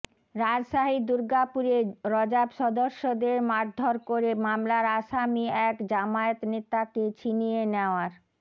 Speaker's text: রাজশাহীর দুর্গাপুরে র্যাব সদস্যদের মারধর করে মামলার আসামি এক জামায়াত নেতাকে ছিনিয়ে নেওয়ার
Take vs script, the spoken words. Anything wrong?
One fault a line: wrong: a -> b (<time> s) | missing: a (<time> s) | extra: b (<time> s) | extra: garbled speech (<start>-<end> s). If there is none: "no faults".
no faults